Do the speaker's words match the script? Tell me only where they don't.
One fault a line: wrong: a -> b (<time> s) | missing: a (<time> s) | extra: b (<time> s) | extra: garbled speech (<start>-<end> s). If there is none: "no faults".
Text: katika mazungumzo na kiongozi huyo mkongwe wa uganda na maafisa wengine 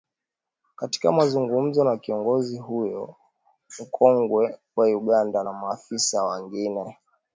no faults